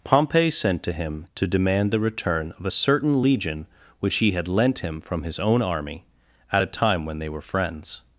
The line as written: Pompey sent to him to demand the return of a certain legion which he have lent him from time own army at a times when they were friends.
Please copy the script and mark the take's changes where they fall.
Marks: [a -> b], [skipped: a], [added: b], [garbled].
Pompey sent to him to demand the return of a certain legion which he [have -> had] lent him from [time -> his] own army at a [times -> time] when they were friends.